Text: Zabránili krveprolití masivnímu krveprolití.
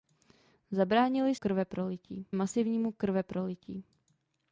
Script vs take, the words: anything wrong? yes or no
no